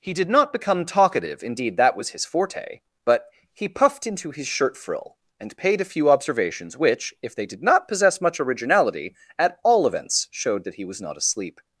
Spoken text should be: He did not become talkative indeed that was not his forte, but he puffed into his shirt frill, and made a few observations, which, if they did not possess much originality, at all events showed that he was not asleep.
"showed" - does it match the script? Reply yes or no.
yes